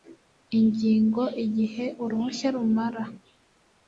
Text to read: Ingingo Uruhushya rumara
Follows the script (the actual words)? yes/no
no